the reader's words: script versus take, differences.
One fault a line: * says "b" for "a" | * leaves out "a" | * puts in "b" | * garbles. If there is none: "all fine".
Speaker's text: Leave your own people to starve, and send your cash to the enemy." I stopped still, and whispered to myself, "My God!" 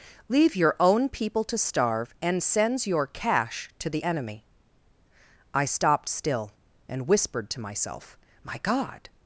* says "sends" for "send"